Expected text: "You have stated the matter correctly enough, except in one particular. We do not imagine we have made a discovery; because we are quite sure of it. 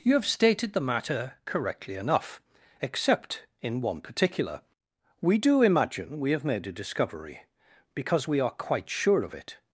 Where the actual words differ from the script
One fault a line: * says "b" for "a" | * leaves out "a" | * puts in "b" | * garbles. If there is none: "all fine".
* leaves out "not"